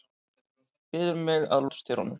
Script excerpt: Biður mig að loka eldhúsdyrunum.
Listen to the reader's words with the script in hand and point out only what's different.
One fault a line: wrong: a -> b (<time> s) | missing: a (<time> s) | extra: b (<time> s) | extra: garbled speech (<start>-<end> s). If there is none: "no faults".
missing: loka (1.7 s)